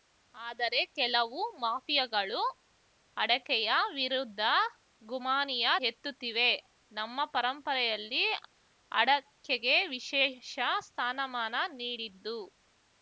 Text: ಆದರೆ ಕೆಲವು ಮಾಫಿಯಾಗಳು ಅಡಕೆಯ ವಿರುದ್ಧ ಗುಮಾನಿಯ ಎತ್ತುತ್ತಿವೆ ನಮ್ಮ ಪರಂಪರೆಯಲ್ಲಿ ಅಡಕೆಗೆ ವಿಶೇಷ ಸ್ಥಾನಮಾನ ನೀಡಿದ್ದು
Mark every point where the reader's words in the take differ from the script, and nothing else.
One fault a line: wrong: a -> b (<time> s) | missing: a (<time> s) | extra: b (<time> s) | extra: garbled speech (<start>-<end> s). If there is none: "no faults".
no faults